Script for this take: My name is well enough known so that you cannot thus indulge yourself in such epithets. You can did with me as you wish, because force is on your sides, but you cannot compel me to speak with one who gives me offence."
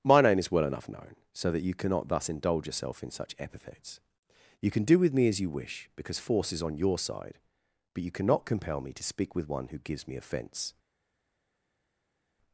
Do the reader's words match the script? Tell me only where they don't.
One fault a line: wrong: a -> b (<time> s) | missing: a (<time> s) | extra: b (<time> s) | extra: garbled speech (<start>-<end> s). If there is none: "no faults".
wrong: did -> do (4.8 s)
wrong: sides -> side (7.0 s)